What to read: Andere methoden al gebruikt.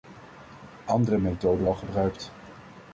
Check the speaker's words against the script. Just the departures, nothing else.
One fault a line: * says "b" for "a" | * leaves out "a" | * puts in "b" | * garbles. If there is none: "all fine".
all fine